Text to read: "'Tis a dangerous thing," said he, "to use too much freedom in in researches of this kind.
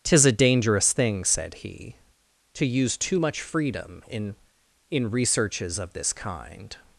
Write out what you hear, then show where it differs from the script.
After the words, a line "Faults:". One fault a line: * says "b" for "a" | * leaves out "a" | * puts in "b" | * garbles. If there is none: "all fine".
"'Tis a dangerous thing," said he, "to use too much freedom in in researches of this kind.
Faults:
all fine